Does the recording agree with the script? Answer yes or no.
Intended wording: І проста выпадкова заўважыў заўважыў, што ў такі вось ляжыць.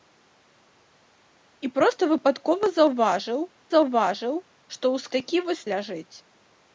yes